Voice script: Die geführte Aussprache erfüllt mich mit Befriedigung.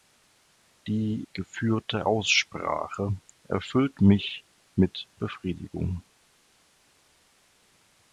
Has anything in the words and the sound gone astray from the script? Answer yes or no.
no